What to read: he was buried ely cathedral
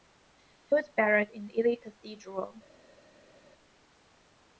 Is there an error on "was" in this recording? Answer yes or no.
no